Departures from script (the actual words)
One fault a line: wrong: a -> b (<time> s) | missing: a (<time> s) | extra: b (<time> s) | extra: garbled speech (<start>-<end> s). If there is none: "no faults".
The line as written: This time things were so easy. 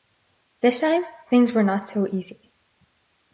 extra: not (1.6 s)